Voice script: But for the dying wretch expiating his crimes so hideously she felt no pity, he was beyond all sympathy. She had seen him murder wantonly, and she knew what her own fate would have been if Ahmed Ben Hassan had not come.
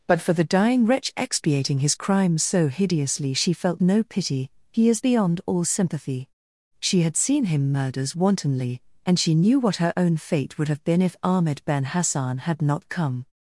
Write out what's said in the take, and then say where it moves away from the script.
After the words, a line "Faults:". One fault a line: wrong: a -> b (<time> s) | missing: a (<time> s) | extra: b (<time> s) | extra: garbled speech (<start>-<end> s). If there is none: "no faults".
But for the dying wretch expiating his crimes so hideously she felt no pity, he is beyond all sympathy. She had seen him murders wantonly, and she knew what her own fate would have been if Ahmed Ben Hassan had not come.
Faults:
wrong: was -> is (4.9 s)
wrong: murder -> murders (7.7 s)